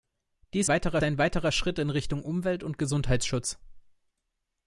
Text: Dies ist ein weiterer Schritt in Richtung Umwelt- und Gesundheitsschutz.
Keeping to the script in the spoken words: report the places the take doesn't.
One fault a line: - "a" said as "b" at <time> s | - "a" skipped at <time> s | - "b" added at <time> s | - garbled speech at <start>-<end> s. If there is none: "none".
- "ist" said as "weiterer" at 0.7 s